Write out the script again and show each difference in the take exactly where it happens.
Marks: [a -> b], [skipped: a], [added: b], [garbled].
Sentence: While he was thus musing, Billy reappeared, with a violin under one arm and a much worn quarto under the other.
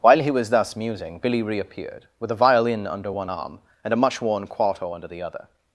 While he was thus musing, Billy reappeared, with a violin under one arm and a much worn quarto under the other.